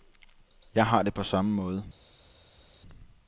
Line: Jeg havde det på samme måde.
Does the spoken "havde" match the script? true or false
false